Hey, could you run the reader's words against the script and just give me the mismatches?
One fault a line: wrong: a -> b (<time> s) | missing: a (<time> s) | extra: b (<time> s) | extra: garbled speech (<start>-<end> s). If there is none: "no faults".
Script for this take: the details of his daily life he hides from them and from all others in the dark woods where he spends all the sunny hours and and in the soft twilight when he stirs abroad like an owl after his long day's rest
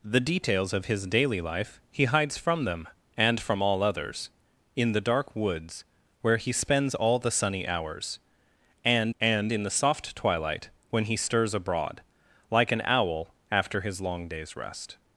no faults